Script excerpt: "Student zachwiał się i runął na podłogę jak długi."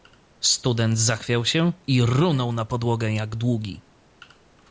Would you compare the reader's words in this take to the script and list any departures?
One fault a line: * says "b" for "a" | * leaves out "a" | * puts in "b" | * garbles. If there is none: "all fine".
all fine